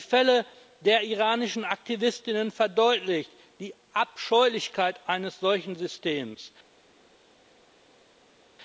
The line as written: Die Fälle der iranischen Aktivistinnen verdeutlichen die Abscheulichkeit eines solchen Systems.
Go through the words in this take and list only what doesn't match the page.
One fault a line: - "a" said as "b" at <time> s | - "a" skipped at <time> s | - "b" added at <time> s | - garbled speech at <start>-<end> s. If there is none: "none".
none